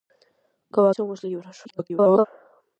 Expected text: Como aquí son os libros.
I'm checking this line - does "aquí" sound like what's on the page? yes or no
no